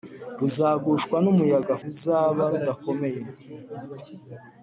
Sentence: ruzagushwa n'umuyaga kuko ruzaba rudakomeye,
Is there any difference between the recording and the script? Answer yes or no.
yes